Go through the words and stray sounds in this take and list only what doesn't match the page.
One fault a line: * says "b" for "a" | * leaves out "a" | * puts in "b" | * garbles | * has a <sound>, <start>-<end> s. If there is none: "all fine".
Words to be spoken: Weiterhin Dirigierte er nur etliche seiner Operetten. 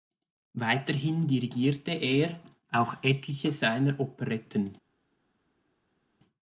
* says "auch" for "nur"